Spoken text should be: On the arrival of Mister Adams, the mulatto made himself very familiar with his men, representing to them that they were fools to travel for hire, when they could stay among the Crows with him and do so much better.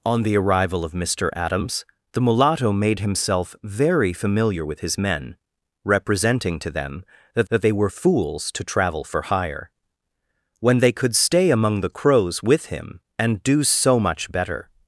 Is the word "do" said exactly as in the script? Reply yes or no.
yes